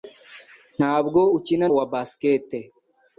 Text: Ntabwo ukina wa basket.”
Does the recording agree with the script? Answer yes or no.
yes